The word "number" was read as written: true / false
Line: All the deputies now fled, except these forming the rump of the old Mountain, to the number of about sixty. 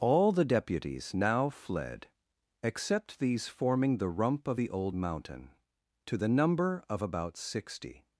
true